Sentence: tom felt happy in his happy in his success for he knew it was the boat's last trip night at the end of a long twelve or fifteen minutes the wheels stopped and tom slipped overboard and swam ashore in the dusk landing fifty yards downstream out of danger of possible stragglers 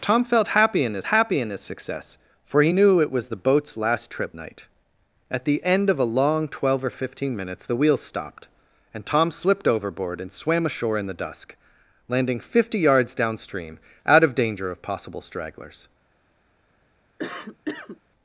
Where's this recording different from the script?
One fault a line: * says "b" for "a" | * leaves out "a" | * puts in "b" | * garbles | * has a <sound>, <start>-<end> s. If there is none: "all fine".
* has a cough, 17.2-18.0 s